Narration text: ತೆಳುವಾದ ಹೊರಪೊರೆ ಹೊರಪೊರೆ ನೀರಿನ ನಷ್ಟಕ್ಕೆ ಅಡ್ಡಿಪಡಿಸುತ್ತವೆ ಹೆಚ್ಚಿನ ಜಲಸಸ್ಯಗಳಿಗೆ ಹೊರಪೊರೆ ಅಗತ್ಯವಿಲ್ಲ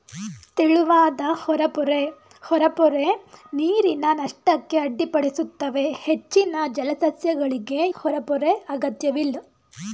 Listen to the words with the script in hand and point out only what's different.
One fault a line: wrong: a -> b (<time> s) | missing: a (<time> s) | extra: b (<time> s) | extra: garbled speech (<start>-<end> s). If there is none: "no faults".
no faults